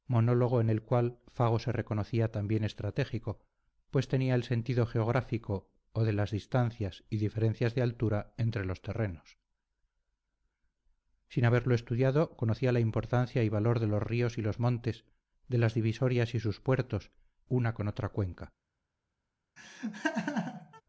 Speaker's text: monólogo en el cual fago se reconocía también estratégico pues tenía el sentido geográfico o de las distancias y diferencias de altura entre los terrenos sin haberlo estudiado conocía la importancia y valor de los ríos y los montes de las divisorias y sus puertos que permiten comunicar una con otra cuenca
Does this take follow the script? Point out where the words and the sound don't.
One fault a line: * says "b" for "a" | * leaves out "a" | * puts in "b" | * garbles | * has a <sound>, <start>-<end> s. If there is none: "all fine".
* leaves out "que permiten comunicar"
* has a laugh, 19.6-20.8 s